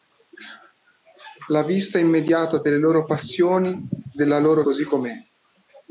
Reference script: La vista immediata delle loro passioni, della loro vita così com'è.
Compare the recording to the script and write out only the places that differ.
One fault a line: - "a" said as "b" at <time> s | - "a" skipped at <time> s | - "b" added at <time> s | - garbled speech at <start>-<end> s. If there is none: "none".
- "vita" skipped at 4.6 s